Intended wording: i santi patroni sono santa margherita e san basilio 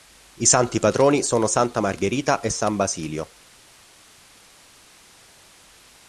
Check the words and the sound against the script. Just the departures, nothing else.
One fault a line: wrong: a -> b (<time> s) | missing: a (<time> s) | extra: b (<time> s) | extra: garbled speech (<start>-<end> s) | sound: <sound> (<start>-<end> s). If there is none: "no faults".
no faults